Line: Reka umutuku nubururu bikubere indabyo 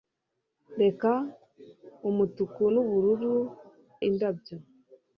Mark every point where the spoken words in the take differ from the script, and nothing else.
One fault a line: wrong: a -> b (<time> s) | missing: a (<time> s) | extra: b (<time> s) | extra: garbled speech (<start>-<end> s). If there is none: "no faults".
missing: bikubere (3.4 s)